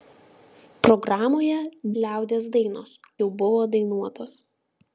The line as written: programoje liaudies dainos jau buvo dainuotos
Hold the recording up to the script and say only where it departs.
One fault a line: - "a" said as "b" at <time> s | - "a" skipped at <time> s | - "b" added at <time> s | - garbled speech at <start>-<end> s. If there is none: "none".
none